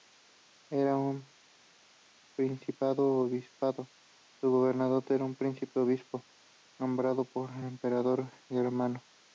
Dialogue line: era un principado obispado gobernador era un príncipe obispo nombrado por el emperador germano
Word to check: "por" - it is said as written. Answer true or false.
true